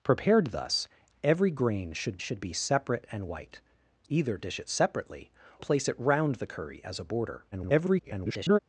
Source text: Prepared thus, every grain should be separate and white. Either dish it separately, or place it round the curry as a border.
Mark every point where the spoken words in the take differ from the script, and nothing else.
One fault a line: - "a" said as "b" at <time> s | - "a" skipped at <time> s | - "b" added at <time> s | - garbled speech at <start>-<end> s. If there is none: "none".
- "should" added at 2.2 s
- "or" skipped at 5.3 s
- garbled speech at 7.5-8.6 s